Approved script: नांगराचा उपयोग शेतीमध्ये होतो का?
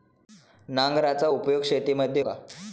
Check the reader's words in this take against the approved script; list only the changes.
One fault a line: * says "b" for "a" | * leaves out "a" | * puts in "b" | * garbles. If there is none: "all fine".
* leaves out "होतो"